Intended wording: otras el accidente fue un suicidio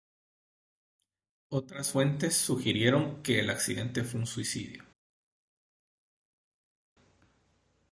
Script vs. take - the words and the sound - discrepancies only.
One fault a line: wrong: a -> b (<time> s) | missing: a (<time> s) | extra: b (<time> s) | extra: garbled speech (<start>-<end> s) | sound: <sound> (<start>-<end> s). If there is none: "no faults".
extra: fuentes sugirieron que (1.9 s)